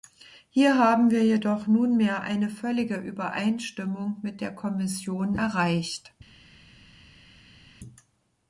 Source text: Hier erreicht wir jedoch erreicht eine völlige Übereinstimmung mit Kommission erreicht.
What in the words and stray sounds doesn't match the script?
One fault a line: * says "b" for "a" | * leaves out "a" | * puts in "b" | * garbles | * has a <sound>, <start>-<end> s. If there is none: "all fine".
* says "haben" for "erreicht"
* says "nunmehr" for "erreicht"
* puts in "der"